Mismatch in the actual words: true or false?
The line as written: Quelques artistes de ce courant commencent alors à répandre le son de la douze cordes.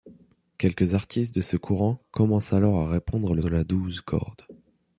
true